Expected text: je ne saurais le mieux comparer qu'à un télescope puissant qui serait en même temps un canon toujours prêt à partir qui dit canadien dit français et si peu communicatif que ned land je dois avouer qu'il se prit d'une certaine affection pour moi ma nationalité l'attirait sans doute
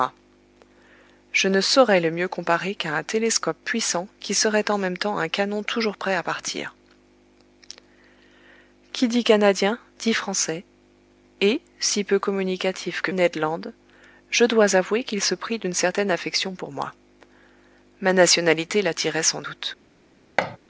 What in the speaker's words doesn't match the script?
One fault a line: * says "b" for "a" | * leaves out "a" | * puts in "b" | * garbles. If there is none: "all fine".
all fine